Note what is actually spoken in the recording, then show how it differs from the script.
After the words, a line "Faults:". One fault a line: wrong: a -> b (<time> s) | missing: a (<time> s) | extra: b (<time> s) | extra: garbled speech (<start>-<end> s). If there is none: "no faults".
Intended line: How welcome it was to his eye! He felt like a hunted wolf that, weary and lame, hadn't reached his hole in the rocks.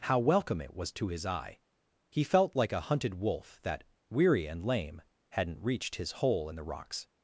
How welcome it was to his eye! He felt like a hunted wolf that, weary and lame, hadn't reached his hole in the rocks.
Faults:
no faults